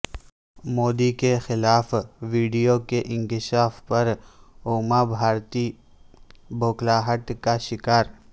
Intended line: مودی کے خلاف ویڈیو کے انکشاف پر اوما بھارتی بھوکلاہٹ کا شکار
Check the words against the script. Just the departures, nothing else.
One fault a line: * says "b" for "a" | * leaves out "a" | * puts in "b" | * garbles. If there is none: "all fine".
all fine